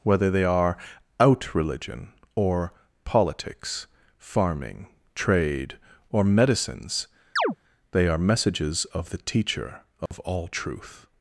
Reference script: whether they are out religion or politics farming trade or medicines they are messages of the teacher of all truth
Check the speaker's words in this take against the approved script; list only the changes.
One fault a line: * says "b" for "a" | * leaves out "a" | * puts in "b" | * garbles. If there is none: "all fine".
all fine